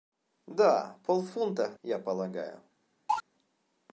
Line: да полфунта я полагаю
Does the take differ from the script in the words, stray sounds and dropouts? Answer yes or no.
yes